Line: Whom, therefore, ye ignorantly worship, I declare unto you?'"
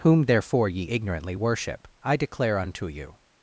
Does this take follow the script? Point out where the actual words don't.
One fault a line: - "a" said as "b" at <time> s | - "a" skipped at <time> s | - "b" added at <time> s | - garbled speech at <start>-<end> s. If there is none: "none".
none